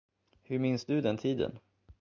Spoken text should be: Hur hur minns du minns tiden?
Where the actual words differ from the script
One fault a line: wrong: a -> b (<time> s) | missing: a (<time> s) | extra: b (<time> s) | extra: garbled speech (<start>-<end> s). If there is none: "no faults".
missing: hur (0.6 s)
wrong: minns -> den (1.0 s)